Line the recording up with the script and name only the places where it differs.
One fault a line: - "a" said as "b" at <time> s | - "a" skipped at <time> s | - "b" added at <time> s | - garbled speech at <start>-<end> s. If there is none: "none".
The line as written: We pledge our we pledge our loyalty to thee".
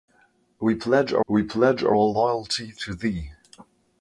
none